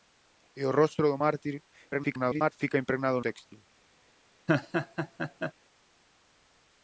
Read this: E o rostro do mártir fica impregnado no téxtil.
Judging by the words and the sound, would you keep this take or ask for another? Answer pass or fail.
fail